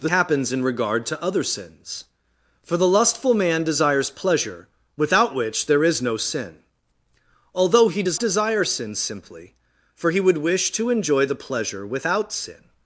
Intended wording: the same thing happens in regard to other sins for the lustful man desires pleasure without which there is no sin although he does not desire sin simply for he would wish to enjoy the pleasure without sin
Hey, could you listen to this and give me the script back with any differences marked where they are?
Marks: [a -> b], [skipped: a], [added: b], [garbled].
the [skipped: same thing] happens in regard to other sins for the lustful man desires pleasure without which there is no sin although he does [skipped: not] desire sin simply for he would wish to enjoy the pleasure without sin